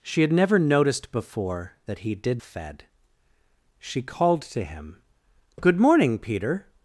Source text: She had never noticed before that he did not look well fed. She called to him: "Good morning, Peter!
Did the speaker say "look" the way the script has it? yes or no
no